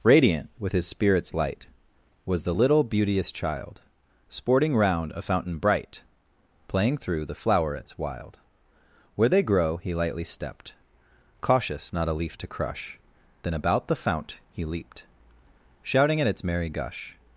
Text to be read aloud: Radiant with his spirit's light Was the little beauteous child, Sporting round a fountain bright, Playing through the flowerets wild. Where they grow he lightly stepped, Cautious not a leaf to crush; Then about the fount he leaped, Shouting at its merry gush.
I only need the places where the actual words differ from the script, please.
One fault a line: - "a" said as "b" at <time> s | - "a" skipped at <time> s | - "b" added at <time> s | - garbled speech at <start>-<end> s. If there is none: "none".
none